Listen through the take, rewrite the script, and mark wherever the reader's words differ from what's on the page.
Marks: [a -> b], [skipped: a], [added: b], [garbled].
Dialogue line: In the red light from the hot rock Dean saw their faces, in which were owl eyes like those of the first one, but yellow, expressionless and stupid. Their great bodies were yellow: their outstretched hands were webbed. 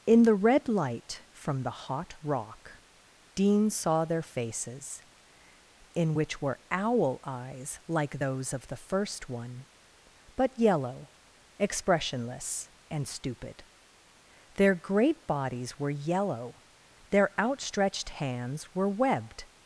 In the red light from the hot rock Dean saw their faces, in which were owl eyes like those of the first one, but yellow, expressionless and stupid. Their great bodies were yellow: their outstretched hands were webbed.